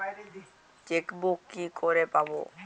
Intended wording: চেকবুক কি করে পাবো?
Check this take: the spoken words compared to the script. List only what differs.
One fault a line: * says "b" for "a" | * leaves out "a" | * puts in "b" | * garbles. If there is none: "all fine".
all fine